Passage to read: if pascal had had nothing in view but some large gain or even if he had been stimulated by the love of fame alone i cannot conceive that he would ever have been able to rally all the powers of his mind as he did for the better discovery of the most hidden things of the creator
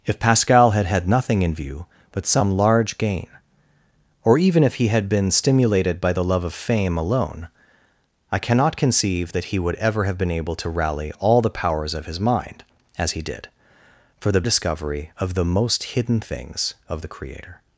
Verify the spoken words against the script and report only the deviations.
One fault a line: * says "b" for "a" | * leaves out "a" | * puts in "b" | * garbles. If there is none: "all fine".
* leaves out "better"